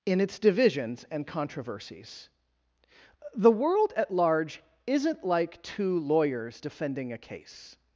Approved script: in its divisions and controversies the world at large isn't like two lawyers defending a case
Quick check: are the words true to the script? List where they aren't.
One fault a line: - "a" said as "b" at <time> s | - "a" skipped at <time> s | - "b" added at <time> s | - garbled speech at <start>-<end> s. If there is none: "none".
none